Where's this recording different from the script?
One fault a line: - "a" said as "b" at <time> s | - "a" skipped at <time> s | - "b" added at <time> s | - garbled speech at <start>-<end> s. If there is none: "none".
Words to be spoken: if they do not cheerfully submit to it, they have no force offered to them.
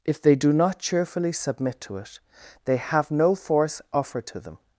none